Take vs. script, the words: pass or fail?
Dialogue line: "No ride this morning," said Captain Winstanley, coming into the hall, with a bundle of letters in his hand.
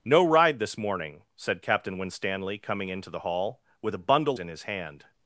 fail